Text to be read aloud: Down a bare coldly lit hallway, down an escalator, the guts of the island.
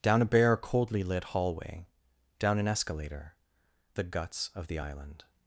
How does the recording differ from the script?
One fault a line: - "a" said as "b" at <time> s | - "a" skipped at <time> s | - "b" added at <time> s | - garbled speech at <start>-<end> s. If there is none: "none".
none